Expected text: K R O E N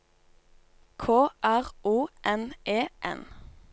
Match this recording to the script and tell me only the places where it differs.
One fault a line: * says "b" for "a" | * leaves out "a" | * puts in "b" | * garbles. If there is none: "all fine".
* puts in "N"